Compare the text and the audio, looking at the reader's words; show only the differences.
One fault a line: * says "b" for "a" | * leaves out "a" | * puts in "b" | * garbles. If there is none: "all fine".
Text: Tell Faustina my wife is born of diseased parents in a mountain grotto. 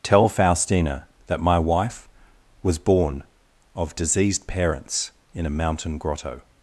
* puts in "that"
* says "was" for "is"